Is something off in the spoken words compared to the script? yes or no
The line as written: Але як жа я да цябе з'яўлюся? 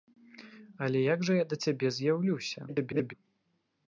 yes